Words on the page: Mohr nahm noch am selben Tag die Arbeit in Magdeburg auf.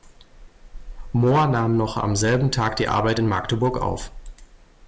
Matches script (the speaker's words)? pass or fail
pass